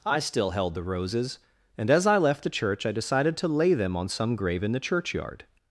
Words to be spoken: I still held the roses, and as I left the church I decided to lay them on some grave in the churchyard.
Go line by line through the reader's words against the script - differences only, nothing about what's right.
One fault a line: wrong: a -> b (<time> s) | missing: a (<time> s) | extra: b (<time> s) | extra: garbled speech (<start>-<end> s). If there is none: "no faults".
no faults